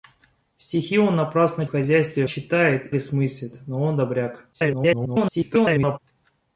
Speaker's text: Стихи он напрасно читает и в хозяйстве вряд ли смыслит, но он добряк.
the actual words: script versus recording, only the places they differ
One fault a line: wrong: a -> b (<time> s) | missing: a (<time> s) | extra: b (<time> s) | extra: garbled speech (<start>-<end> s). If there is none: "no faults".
missing: читает и (1.7 s)
wrong: вряд -> читает (2.3 s)
extra: garbled speech (4.5-6.0 s)